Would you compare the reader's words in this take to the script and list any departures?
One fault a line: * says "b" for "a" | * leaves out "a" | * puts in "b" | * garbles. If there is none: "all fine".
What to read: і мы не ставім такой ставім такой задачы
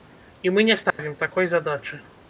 * leaves out "ставім такой"